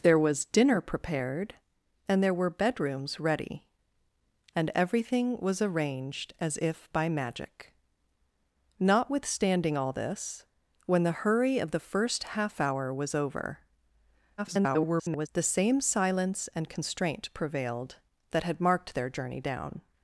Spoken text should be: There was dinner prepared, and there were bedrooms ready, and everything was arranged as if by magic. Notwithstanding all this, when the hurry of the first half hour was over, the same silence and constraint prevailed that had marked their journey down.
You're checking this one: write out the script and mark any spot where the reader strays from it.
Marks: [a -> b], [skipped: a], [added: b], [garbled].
There was dinner prepared, and there were bedrooms ready, and everything was arranged as if by magic. Notwithstanding all this, when the hurry of the first half hour was over, [garbled] the same silence and constraint prevailed that had marked their journey down.